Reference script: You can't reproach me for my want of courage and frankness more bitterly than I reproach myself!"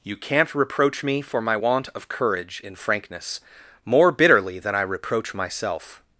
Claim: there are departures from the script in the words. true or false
true